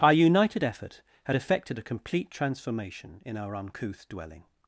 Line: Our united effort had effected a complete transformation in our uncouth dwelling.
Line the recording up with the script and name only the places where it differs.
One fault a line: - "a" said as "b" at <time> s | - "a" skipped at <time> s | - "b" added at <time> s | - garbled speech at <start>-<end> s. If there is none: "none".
none